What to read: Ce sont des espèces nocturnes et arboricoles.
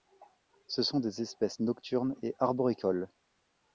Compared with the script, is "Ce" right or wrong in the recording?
right